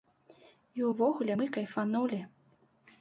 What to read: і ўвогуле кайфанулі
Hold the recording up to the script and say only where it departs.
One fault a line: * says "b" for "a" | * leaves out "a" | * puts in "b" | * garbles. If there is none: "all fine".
* puts in "мы"